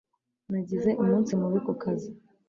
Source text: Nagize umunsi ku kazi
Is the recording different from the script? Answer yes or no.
yes